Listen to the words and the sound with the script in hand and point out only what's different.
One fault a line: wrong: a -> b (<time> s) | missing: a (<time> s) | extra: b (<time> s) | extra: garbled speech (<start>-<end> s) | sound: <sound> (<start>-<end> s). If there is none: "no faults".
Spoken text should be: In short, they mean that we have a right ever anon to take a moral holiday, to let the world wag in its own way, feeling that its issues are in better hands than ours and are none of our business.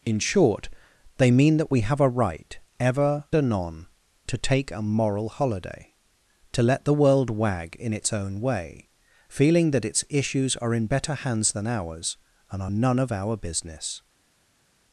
no faults